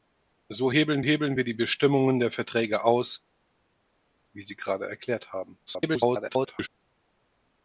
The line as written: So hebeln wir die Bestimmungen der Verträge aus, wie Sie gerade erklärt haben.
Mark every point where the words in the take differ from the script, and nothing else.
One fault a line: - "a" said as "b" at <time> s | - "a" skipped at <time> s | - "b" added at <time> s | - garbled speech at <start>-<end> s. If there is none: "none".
- "hebeln" added at 1.0 s
- garbled speech at 5.7-6.7 s